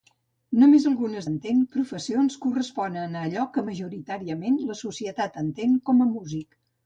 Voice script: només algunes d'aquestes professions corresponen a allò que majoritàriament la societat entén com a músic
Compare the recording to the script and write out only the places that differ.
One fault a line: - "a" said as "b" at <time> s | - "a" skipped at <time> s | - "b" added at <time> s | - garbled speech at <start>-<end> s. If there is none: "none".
- "d'aquestes" said as "entén" at 1.3 s